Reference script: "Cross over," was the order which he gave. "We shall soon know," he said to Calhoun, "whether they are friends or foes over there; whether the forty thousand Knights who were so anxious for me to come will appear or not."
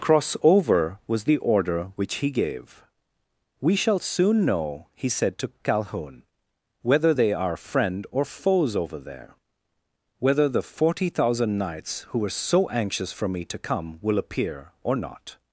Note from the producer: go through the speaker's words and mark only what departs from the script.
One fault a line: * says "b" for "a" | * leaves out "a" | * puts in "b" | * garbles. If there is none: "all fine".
* says "friend" for "friends"